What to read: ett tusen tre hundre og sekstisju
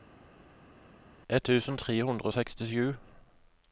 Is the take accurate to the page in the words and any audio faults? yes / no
yes